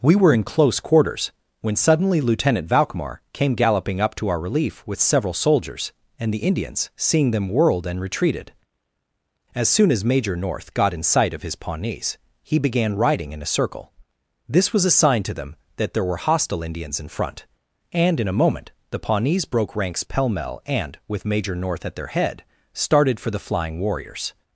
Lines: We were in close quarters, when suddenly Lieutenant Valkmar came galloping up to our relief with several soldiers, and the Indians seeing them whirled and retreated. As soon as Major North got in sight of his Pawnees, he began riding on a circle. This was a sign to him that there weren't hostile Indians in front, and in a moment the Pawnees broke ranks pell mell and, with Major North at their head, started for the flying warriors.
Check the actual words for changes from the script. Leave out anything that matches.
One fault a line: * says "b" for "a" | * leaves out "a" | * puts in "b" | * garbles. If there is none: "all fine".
* says "in" for "on"
* says "them" for "him"
* says "were" for "weren't"